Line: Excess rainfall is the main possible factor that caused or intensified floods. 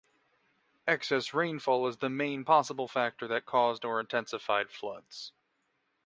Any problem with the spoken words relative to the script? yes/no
no